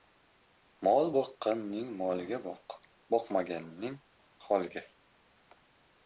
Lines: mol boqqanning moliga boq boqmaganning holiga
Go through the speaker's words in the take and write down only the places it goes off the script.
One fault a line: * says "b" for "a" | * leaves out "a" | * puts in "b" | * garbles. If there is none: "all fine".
all fine